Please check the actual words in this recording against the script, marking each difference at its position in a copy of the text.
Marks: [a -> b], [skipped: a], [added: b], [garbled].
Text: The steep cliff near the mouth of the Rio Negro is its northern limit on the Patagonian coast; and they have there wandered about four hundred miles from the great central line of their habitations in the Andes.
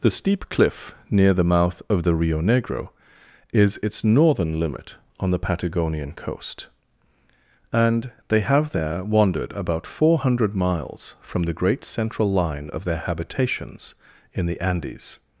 The steep cliff near the mouth of the Rio Negro is its northern limit on the Patagonian coast; and they have there wandered about four hundred miles from the great central line of their habitations in the Andes.